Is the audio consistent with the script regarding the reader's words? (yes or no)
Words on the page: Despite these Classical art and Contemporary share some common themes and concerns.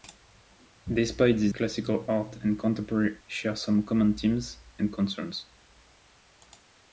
yes